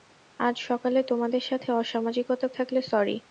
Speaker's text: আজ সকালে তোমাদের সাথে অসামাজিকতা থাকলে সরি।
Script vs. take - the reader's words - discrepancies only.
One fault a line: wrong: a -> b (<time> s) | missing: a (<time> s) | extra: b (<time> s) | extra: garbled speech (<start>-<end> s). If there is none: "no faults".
no faults